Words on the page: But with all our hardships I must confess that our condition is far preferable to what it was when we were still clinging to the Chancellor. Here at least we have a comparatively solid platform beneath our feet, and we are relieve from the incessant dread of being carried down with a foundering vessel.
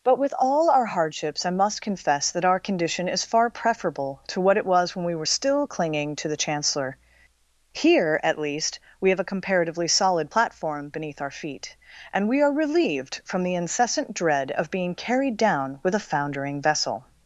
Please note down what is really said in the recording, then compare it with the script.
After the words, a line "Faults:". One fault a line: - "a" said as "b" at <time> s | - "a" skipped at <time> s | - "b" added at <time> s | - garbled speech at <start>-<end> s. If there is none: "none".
But with all our hardships I must confess that our condition is far preferable to what it was when we were still clinging to the Chancellor. Here at least we have a comparatively solid platform beneath our feet, and we are relieved from the incessant dread of being carried down with a foundering vessel.
Faults:
- "relieve" said as "relieved" at 12.5 s